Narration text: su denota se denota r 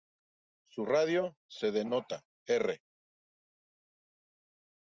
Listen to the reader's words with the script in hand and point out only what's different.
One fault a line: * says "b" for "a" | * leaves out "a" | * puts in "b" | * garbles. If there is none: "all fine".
* says "radio" for "denota"